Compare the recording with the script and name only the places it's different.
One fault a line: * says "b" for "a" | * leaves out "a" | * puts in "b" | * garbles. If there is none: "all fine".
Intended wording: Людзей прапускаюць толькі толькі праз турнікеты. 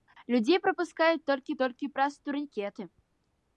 all fine